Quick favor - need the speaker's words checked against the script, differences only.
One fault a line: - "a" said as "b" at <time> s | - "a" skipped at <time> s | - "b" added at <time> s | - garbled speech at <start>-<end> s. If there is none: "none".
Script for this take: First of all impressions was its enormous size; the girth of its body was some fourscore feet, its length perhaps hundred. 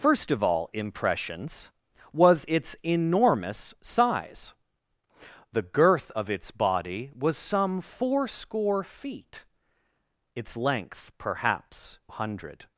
none